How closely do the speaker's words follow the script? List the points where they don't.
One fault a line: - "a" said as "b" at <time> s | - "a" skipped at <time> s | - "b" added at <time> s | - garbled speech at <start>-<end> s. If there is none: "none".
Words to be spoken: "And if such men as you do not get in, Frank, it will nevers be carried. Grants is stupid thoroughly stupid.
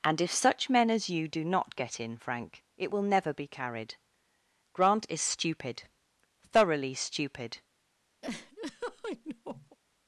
- "nevers" said as "never" at 3.0 s
- "Grants" said as "Grant" at 4.7 s